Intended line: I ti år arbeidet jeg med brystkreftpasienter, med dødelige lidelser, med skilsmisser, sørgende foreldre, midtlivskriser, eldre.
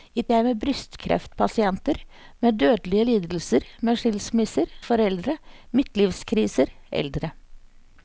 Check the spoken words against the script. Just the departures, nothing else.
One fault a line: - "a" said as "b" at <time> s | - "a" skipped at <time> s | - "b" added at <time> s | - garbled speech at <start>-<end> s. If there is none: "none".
- "ti år arbeidet" skipped at 0.2 s
- "sørgende" skipped at 4.7 s